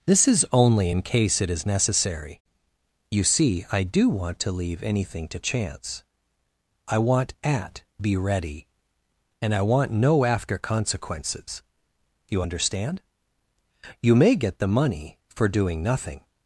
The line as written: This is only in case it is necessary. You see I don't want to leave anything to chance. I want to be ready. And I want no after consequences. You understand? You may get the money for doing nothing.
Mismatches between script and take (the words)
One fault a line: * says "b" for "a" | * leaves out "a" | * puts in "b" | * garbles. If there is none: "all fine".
* says "do" for "don't"
* says "at" for "to"